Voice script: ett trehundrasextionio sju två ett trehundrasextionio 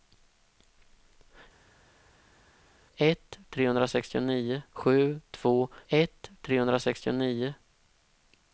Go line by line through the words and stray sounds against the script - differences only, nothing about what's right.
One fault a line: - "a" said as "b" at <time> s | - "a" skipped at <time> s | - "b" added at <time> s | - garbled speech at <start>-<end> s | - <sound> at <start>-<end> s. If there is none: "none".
none